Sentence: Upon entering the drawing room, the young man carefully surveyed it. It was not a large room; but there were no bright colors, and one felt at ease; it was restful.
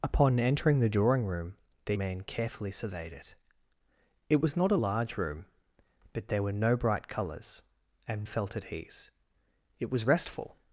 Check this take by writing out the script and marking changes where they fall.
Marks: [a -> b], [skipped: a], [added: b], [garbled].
Upon entering the drawing room, the [skipped: young] man carefully surveyed it. It was not a large room; but there were no bright colors, and [skipped: one] felt at ease; it was restful.